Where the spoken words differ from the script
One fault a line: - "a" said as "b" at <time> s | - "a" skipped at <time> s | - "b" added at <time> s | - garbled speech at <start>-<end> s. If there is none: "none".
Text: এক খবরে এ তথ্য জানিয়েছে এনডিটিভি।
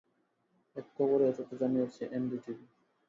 none